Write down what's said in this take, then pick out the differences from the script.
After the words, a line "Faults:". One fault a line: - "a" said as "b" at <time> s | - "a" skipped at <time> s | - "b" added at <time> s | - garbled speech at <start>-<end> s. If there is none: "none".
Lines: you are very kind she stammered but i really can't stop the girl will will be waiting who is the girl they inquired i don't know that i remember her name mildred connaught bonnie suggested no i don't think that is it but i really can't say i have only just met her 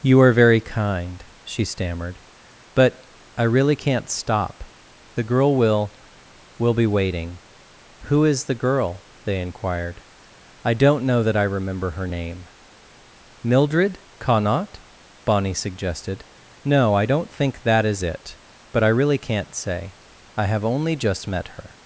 you are very kind she stammered but i really can't stop the girl will will be waiting who is the girl they inquired i don't know that i remember her name mildred connaught bonnie suggested no i don't think that is it but i really can't say i have only just met her
Faults:
none